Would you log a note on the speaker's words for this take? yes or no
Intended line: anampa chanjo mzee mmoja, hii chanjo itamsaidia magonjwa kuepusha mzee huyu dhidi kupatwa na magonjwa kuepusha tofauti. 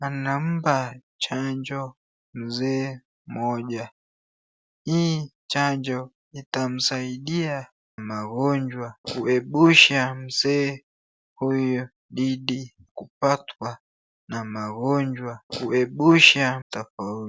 no